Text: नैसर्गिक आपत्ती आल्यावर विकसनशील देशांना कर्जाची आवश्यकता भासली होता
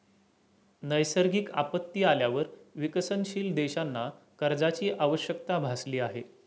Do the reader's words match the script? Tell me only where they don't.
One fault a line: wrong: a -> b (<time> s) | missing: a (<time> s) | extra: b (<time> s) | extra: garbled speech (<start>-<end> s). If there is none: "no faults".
wrong: होता -> आहे (6.0 s)